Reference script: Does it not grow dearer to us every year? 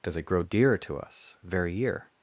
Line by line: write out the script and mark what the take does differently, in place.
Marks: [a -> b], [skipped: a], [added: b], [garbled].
Does it [skipped: not] grow dearer to us [every -> very] year?